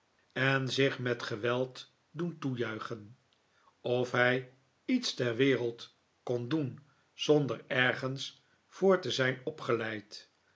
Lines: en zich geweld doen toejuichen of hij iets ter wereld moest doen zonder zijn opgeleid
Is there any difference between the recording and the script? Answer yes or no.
yes